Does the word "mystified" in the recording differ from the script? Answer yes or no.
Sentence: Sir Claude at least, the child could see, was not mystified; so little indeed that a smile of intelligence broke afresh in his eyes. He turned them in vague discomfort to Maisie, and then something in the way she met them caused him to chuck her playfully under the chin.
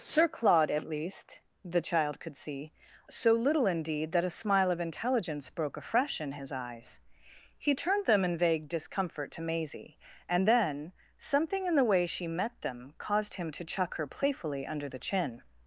yes